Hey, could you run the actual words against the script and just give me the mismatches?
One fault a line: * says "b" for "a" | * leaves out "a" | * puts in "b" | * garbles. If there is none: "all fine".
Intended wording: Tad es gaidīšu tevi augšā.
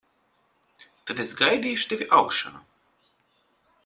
all fine